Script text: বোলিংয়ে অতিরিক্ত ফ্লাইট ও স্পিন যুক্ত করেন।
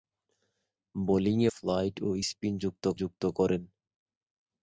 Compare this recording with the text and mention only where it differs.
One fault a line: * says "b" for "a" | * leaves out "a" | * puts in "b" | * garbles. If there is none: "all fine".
* leaves out "অতিরিক্ত"
* puts in "যুক্ত"